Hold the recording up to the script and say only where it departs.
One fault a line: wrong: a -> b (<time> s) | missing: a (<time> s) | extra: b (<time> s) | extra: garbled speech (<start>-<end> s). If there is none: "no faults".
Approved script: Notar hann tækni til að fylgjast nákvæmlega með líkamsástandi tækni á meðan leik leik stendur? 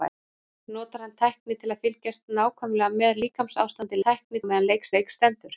no faults